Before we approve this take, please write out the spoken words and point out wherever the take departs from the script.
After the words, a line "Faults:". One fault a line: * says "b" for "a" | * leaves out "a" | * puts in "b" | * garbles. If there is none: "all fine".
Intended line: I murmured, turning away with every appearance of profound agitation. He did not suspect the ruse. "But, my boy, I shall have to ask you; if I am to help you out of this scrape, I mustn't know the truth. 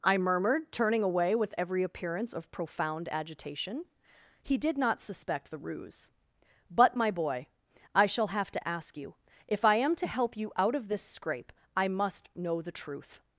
I murmured, turning away with every appearance of profound agitation. He did not suspect the ruse. "But, my boy, I shall have to ask you; if I am to help you out of this scrape, I must know the truth.
Faults:
* says "must" for "mustn't"